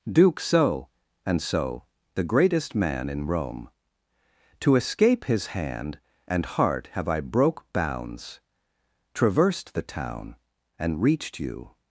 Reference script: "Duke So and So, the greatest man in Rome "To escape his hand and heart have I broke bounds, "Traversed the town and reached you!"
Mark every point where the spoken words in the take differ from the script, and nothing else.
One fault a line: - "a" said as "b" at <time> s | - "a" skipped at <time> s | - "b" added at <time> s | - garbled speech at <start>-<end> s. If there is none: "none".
none